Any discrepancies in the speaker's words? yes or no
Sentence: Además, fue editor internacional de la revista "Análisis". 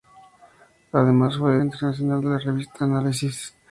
yes